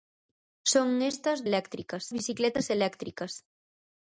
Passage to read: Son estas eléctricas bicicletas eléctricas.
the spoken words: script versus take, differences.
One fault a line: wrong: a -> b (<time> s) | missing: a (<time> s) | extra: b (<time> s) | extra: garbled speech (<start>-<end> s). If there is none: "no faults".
no faults